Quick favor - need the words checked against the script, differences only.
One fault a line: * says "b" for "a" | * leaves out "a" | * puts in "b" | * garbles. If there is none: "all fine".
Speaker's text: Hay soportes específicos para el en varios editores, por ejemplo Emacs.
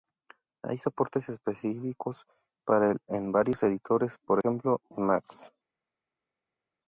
all fine